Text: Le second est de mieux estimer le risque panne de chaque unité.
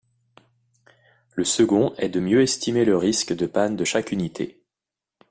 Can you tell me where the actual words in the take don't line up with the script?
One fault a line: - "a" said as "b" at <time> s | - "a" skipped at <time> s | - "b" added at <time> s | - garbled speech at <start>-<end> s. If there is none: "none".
- "de" added at 3.3 s